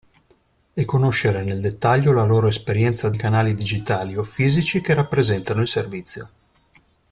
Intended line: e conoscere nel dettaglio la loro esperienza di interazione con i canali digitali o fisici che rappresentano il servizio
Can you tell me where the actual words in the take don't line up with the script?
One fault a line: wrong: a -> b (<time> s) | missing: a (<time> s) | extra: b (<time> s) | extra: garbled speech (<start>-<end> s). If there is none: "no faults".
missing: di interazione con (3.1 s)